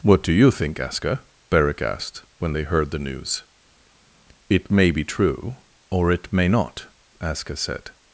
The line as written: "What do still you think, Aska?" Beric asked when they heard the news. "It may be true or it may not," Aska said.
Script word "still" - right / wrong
wrong